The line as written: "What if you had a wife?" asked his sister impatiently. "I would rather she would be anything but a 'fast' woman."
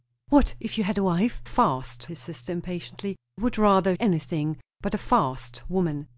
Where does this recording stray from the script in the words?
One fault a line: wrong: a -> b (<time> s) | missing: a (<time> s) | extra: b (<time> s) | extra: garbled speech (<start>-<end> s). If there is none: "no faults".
wrong: asked -> fast (1.4 s)
missing: I (3.2 s)
missing: she would be (3.9 s)